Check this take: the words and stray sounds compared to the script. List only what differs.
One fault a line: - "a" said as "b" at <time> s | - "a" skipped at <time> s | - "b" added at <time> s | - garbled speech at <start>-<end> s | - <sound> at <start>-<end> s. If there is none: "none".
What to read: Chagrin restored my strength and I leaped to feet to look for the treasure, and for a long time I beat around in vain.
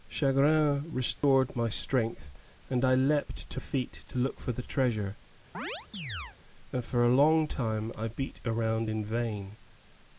- dropout at 1.2-1.2 s
- chirp at 5.5-6.4 s